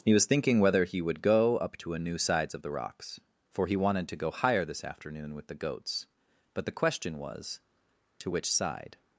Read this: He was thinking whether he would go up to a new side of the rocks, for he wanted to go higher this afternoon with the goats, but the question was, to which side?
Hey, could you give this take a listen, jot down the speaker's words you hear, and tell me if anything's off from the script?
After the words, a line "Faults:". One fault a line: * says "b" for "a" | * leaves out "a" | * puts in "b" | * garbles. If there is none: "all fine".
He was thinking whether he would go up to a new sides of the rocks, for he wanted to go higher this afternoon with the goats, but the question was, to which side?
Faults:
* says "sides" for "side"